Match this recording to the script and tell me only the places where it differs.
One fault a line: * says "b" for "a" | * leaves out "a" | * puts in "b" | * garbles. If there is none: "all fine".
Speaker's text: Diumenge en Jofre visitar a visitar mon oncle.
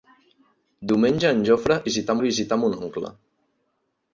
all fine